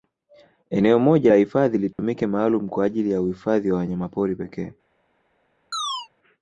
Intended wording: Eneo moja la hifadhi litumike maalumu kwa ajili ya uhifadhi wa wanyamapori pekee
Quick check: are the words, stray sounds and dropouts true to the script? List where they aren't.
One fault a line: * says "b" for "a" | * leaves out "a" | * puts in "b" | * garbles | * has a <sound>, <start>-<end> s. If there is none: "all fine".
* has a dropout, 1.9-2.0 s
* has a chirp, 5.7-6.1 s